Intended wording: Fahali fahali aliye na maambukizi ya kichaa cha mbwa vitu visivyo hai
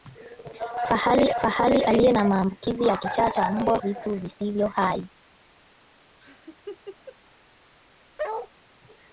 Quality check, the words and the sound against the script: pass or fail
fail